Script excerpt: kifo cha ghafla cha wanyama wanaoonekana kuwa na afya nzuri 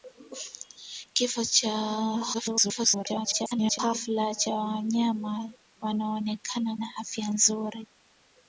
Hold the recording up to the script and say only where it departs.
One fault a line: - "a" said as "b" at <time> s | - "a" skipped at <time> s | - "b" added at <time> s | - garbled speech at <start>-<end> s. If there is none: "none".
- garbled speech at 2.3-3.8 s
- "kuwa" skipped at 6.8 s